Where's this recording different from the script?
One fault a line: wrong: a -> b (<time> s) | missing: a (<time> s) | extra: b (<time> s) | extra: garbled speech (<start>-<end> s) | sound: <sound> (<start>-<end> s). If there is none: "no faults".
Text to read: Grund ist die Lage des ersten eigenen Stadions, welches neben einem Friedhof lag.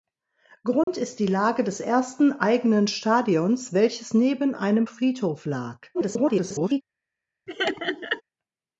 sound: dropout (0.8-0.9 s)
extra: garbled speech (5.9-6.8 s)
sound: laugh (7.5-8.2 s)